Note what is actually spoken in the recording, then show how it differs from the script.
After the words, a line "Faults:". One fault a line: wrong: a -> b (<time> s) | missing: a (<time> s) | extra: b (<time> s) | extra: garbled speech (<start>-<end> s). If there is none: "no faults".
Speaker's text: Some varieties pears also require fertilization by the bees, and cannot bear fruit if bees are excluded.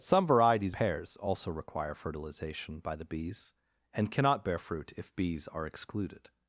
Some varieties pears also require fertilization by the bees, and cannot bear fruit if bees are excluded.
Faults:
no faults